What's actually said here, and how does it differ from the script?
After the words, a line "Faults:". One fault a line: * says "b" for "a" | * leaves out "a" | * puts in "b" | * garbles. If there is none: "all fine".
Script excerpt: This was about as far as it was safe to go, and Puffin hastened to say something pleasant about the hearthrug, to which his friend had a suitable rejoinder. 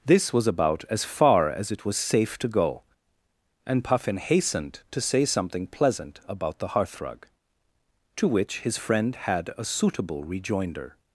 This was about as far as it was safe to go, and Puffin hastened to say something pleasant about the hearthrug, to which his friend had a suitable rejoinder.
Faults:
all fine